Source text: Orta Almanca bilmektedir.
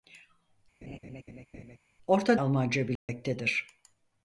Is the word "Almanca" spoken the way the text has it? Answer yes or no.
yes